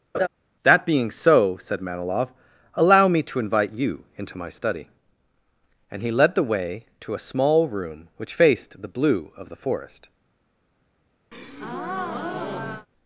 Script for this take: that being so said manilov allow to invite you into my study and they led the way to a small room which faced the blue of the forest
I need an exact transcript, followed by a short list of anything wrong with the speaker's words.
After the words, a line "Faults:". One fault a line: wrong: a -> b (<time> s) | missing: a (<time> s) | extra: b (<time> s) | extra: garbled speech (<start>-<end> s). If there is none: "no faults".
that being so said manilov allow me to invite you into my study and he led the way to a small room which faced the blue of the forest
Faults:
extra: me (3.1 s)
wrong: they -> he (6.0 s)